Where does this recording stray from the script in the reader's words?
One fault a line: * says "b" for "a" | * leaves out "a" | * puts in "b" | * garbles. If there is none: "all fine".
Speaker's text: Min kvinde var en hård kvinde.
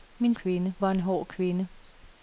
all fine